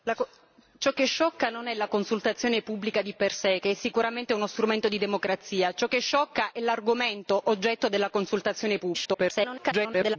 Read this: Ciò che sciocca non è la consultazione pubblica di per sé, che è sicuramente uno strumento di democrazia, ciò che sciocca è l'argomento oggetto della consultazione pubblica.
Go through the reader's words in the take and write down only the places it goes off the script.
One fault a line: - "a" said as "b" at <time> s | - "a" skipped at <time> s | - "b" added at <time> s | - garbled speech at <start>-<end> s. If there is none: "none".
- garbled speech at 8.9-10.2 s